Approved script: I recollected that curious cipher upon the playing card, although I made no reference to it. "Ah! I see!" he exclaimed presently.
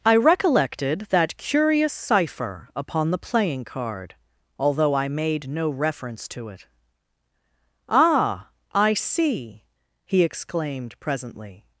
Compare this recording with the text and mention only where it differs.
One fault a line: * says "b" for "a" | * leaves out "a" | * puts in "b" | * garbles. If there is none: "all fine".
all fine